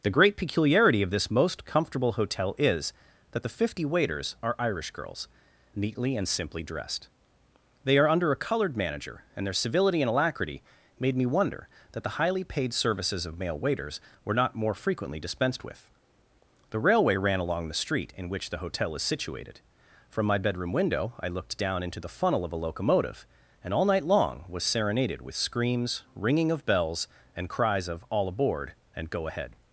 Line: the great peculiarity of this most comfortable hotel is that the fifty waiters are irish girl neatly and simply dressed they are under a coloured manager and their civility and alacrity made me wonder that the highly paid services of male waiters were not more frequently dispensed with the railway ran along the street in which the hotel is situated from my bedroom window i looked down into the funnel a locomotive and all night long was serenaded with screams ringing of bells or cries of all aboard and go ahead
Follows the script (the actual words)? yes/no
no